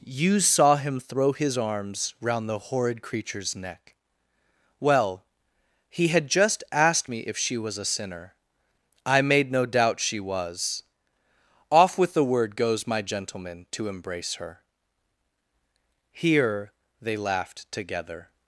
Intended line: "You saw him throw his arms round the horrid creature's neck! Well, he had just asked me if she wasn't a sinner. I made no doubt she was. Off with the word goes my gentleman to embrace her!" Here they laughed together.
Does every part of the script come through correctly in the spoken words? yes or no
no